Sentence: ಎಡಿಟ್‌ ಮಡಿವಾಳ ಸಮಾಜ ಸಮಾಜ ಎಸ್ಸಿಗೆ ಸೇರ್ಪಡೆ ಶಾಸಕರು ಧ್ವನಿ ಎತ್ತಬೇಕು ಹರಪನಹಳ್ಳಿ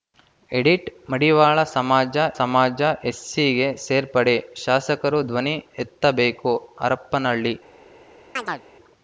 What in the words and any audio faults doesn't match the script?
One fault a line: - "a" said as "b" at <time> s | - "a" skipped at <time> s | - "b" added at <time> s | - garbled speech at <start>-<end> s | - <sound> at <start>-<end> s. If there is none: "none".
- chirp at 8.4-8.6 s